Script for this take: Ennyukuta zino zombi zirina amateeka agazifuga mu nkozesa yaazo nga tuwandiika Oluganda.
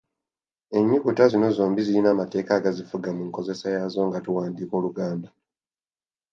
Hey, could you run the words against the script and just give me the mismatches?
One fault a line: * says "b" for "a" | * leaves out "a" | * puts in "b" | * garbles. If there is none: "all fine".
all fine